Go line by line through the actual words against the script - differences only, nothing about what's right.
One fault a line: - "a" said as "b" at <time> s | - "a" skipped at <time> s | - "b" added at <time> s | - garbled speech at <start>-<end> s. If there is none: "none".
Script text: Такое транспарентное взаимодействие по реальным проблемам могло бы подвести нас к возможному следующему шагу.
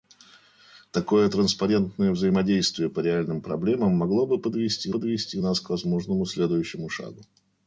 - "подвести" added at 4.9 s